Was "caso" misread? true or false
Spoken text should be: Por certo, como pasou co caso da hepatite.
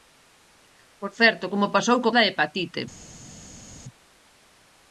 true